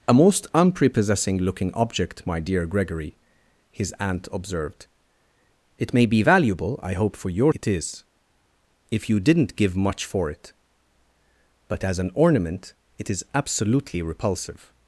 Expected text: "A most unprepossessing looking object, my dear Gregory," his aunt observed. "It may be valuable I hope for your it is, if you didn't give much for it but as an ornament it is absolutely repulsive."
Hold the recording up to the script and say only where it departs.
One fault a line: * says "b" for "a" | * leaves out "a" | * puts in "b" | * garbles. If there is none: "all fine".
all fine